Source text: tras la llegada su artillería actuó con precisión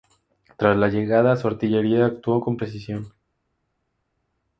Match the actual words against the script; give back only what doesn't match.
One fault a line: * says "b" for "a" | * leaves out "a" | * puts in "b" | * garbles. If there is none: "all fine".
all fine